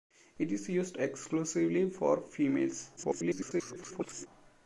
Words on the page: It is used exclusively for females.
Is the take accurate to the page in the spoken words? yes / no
no